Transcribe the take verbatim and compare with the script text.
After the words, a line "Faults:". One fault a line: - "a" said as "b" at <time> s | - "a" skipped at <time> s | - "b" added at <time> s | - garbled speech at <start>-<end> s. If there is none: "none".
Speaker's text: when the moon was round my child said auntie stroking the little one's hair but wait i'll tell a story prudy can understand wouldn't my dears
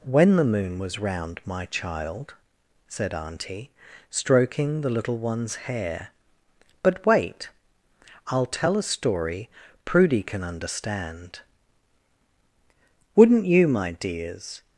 when the moon was round my child said auntie stroking the little one's hair but wait i'll tell a story prudy can understand wouldn't you my dears
Faults:
- "you" added at 13.4 s